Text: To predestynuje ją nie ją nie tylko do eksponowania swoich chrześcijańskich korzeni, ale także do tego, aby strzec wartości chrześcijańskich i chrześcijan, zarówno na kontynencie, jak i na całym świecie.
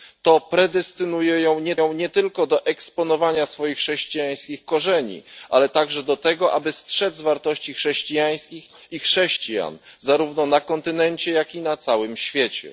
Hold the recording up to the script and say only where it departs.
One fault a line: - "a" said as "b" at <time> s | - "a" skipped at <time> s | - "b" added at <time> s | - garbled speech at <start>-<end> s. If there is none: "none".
none